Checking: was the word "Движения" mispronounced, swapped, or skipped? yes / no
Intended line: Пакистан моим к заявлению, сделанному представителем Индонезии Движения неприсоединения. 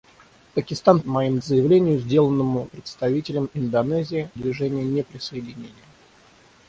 no